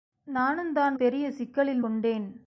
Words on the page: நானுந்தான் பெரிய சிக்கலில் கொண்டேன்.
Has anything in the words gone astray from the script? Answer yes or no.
no